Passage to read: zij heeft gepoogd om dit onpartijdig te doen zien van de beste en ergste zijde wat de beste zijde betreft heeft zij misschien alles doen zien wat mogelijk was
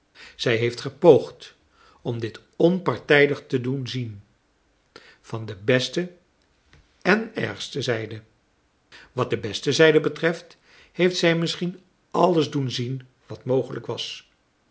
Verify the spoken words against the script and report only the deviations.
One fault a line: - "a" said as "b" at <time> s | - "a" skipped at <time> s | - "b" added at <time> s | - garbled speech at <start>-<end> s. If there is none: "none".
none